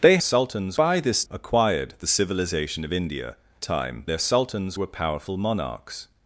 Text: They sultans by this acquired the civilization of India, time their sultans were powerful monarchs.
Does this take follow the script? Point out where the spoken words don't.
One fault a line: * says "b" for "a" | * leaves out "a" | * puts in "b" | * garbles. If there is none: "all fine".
all fine